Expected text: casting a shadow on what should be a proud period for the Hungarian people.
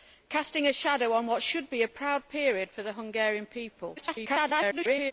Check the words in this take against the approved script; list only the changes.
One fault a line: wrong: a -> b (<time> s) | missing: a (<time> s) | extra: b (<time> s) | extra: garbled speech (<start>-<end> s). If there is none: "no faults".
extra: garbled speech (4.0-5.1 s)